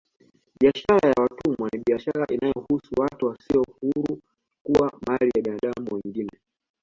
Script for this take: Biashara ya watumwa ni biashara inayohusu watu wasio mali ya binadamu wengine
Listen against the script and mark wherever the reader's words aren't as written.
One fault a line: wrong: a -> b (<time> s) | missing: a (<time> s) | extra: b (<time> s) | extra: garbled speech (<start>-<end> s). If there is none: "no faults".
extra: huru kuwa (3.8 s)